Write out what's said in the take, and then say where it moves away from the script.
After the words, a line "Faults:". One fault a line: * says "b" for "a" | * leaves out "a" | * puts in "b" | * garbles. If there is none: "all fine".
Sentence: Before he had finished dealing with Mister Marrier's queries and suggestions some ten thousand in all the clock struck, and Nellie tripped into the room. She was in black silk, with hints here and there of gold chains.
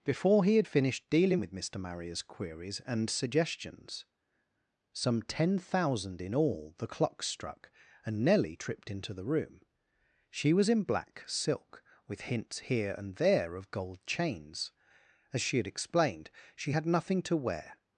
Before he had finished dealing with Mister Marrier's queries and suggestions some ten thousand in all the clock struck, and Nellie tripped into the room. She was in black silk, with hints here and there of gold chains. As she had explained, she had nothing to wear
Faults:
* puts in "As she had explained she had nothing to wear"